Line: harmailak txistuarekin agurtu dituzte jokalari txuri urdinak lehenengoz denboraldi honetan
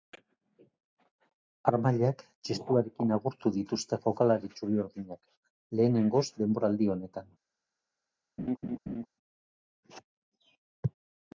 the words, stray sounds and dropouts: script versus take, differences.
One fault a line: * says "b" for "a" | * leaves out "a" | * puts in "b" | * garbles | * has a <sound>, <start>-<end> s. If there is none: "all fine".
* has a laugh, 8.4-9.1 s